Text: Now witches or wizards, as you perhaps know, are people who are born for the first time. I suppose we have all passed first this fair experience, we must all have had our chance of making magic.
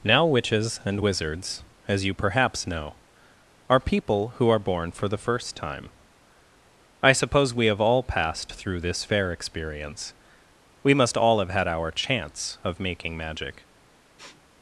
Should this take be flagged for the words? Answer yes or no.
yes